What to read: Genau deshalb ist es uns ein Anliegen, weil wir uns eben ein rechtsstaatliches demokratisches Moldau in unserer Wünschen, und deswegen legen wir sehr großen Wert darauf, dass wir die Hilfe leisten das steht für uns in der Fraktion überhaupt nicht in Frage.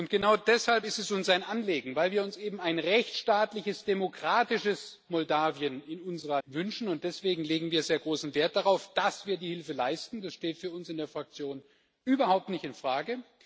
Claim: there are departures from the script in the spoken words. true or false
false